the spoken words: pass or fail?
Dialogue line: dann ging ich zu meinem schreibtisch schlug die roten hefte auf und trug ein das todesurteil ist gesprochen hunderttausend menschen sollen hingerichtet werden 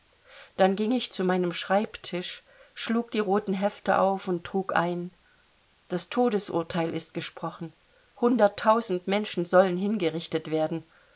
pass